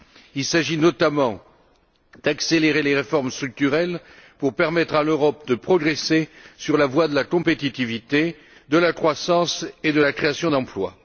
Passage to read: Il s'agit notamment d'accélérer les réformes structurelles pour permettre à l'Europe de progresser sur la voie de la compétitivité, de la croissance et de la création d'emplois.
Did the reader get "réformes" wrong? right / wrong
right